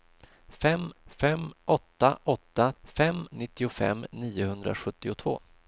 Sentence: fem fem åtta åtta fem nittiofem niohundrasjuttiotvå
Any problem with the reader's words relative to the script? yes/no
no